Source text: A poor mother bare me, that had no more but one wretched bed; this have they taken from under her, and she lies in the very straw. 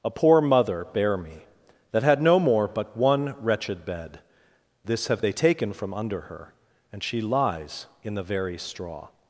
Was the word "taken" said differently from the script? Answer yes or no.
no